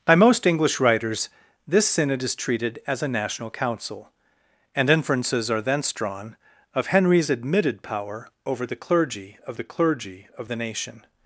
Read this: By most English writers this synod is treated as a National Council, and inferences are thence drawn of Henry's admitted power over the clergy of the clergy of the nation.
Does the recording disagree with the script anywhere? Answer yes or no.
no